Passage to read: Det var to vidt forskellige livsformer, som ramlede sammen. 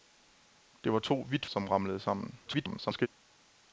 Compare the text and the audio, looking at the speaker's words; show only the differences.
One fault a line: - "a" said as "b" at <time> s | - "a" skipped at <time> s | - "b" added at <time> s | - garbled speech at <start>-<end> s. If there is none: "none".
- "forskellige livsformer" skipped at 1.4 s
- garbled speech at 2.5-3.1 s